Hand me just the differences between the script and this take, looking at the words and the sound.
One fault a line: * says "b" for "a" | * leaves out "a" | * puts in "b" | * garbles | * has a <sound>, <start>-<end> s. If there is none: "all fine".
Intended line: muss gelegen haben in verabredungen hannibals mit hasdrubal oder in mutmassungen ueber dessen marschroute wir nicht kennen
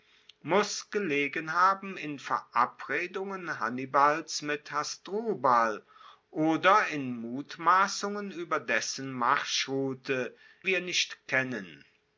all fine